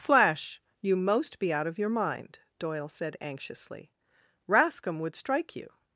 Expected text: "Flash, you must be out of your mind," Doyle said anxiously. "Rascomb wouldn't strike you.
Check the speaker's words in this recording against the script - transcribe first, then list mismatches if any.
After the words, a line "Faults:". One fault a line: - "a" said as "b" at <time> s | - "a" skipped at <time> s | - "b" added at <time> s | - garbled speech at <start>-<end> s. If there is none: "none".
"Flash, you most be out of your mind," Doyle said anxiously. "Rascomb would strike you.
Faults:
- "must" said as "most" at 0.9 s
- "wouldn't" said as "would" at 5.0 s